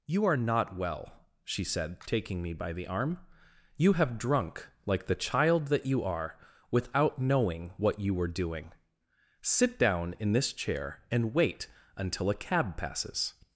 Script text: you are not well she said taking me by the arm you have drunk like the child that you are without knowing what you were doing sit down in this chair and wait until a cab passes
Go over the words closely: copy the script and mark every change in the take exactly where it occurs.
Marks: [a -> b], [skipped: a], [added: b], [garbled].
you are not well she said taking me by the arm you have drunk like the child that you are without knowing what you were doing sit down in this chair and wait until a cab passes